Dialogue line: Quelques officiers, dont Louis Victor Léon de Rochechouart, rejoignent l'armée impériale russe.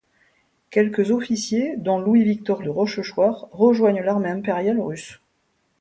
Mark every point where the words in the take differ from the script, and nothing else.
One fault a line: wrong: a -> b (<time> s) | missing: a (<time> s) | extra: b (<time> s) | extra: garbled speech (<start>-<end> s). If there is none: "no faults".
missing: Léon (2.6 s)